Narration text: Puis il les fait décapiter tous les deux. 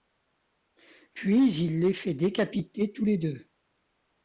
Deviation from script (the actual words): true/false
false